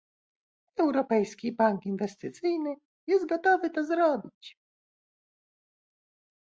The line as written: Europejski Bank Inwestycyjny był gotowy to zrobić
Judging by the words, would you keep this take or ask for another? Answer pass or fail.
fail